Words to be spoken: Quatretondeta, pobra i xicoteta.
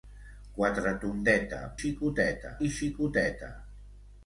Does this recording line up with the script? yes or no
no